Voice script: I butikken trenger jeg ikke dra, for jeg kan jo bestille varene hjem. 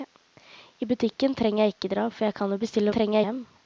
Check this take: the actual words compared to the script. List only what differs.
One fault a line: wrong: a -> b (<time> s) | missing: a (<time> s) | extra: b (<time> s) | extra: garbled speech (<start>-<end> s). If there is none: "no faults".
wrong: varene -> trenger (2.9 s)